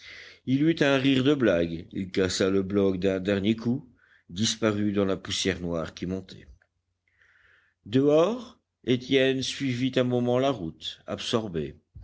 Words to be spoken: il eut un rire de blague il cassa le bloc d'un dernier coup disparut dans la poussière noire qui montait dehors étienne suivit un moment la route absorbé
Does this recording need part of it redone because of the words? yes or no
no